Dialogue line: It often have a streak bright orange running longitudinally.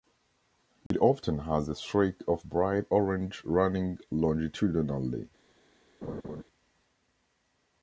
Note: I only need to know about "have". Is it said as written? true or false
false